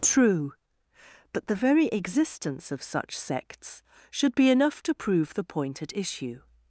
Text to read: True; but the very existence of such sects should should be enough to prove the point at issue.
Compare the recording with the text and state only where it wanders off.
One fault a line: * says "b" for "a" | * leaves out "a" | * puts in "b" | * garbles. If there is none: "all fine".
* leaves out "should"